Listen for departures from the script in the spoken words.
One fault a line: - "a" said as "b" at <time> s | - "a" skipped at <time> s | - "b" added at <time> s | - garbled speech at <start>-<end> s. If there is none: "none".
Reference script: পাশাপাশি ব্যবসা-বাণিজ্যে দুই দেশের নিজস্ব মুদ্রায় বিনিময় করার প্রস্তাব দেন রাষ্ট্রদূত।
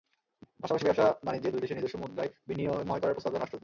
none